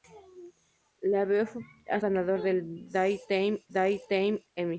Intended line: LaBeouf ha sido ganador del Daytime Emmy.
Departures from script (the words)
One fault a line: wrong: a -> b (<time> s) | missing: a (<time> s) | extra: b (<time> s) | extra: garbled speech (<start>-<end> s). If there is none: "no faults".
missing: sido (2.0 s)
extra: Daytime (3.7 s)